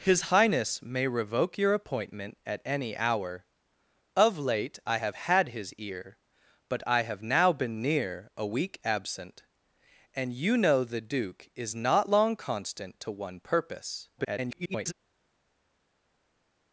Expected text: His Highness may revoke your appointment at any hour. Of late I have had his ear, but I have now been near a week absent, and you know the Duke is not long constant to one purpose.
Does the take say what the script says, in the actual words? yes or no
no